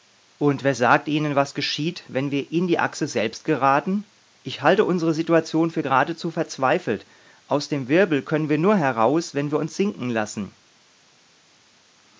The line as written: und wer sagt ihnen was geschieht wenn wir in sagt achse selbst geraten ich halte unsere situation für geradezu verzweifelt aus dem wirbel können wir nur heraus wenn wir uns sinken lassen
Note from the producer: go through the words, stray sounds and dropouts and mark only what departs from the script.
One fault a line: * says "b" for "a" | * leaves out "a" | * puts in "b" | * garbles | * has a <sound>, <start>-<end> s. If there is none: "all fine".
* says "die" for "sagt"